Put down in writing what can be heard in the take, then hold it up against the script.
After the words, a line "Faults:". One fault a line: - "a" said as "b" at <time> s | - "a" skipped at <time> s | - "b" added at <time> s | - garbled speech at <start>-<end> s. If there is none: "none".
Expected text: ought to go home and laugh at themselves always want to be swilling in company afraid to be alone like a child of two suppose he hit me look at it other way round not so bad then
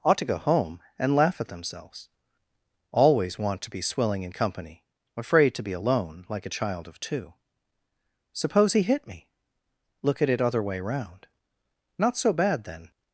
ought to go home and laugh at themselves always want to be swilling in company afraid to be alone like a child of two suppose he hit me look at it other way round not so bad then
Faults:
none